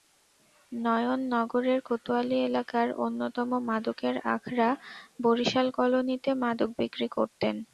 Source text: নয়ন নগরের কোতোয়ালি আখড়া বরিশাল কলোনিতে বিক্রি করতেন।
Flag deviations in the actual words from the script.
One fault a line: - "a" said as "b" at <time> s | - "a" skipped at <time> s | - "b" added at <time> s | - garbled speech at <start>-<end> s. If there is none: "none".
- "এলাকার অন্যতম মাদকের" added at 2.5 s
- "মাদক" added at 6.4 s